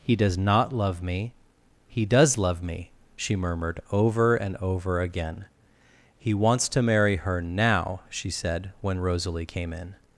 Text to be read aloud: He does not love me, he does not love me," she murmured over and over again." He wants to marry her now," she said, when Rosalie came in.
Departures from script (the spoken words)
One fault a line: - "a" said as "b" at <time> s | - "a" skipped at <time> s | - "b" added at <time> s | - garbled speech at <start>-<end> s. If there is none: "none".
- "not" skipped at 2.4 s